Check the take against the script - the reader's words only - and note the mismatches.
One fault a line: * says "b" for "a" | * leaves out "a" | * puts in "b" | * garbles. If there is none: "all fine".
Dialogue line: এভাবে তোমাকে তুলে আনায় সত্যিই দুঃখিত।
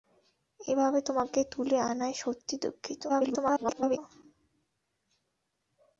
* garbles